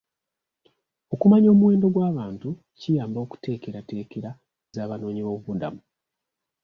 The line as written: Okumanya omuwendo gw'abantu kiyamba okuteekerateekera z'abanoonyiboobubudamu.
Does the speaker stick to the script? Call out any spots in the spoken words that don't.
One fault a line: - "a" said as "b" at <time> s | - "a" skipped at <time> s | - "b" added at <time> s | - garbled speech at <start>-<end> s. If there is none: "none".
none